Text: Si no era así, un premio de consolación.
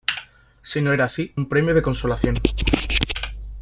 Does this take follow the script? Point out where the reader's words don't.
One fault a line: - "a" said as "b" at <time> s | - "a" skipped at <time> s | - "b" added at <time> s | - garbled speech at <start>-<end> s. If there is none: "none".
none